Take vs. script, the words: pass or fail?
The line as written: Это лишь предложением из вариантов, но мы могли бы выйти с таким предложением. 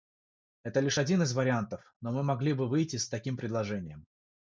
fail